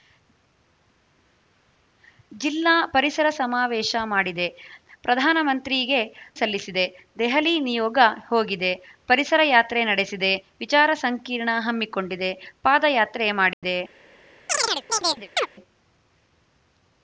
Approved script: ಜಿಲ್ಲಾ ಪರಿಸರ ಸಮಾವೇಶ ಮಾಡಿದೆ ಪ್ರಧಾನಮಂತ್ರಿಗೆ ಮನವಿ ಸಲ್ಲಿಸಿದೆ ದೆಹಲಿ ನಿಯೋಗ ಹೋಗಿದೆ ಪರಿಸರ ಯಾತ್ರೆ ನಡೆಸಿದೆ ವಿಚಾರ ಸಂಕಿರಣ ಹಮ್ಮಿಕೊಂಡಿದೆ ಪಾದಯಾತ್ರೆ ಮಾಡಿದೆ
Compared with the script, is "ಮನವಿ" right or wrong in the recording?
wrong